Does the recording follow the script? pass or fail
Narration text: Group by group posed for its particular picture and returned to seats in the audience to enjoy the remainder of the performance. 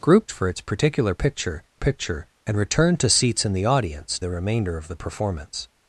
fail